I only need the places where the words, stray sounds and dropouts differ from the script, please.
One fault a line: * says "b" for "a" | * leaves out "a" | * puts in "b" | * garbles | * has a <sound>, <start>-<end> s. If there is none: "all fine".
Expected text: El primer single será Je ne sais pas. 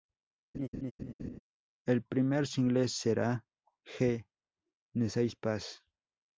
* has a laugh, 0.5-1.4 s